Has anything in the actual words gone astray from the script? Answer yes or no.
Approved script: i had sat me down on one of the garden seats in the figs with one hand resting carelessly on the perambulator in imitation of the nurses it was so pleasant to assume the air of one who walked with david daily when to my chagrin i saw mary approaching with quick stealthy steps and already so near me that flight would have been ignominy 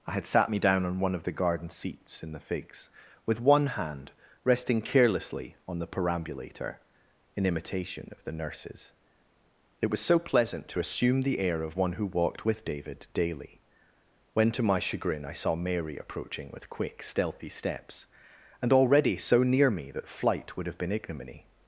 no